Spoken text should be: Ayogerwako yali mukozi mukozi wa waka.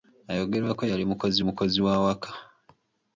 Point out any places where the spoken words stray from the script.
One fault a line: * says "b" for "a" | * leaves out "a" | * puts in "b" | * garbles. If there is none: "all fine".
all fine